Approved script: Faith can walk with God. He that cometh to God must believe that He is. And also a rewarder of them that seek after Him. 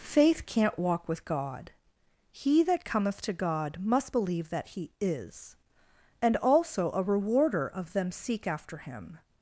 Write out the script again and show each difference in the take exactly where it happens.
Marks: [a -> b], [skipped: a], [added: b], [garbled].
Faith [can -> can't] walk with God. He that cometh to God must believe that He is. And also a rewarder of them [skipped: that] seek after Him.